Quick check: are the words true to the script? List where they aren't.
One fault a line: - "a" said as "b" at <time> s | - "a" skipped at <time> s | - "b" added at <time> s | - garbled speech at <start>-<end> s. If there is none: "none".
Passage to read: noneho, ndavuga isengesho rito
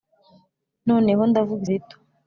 - "isengesho" skipped at 1.6 s